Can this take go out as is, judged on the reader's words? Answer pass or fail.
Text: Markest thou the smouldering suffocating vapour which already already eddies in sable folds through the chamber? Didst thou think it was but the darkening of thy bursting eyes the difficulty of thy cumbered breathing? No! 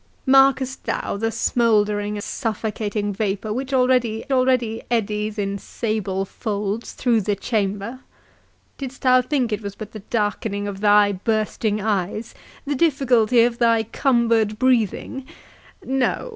pass